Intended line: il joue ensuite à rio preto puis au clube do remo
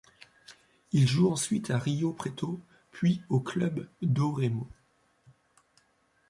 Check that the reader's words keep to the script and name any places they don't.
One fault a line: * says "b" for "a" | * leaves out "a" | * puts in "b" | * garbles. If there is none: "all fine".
all fine